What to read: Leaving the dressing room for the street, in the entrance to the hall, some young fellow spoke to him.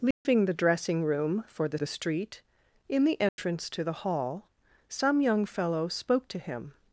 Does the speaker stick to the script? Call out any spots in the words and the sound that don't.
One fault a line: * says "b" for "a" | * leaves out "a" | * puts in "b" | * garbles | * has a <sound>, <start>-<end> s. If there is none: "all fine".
* has a dropout, 0.1-0.3 s
* puts in "the"
* has a dropout, 3.3-3.4 s